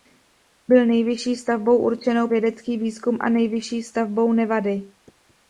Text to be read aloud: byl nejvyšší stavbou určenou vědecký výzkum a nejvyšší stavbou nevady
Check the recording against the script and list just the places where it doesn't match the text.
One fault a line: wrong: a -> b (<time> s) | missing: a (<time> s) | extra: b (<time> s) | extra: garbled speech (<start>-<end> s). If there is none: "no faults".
no faults